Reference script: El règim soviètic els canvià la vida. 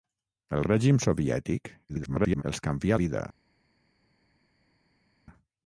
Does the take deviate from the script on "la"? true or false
true